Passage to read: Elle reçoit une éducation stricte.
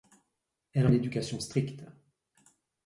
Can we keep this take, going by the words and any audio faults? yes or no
no